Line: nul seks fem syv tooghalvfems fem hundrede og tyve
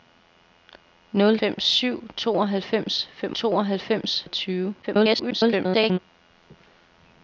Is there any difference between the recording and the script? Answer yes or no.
yes